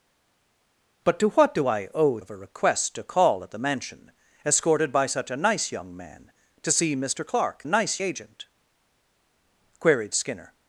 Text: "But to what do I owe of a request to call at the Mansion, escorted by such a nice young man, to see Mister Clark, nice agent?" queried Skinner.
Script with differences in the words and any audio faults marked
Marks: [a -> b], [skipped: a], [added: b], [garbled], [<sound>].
"But to what do I owe of a request to call at the Mansion, escorted by such a nice young man, to see Mister Clark, nice agent?" queried Skinner.